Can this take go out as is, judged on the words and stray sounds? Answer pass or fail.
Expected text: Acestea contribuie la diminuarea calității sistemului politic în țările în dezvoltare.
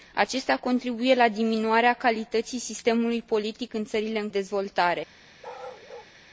fail